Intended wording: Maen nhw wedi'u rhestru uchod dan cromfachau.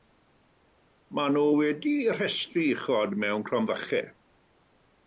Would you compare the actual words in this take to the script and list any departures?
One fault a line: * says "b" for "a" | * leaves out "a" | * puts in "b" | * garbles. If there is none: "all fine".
* says "mewn" for "dan"